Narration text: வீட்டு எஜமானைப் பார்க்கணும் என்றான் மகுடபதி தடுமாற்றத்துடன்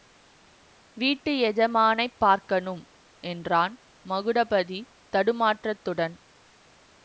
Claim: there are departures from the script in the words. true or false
false